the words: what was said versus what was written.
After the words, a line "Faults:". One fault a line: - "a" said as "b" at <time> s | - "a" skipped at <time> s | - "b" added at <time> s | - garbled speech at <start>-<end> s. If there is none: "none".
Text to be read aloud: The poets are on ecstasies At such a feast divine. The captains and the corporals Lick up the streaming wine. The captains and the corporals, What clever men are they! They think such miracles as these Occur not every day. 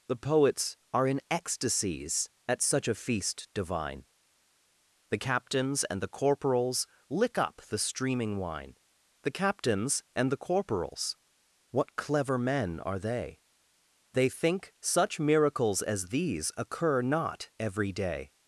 The poets are in ecstasies At such a feast divine. The captains and the corporals Lick up the streaming wine. The captains and the corporals, What clever men are they! They think such miracles as these Occur not every day.
Faults:
- "on" said as "in" at 1.1 s